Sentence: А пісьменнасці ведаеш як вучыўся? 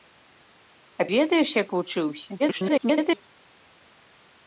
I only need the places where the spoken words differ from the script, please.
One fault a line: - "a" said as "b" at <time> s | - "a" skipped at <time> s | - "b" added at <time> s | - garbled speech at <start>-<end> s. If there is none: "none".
- "пісьменнасці" skipped at 1.1 s
- garbled speech at 2.4-3.3 s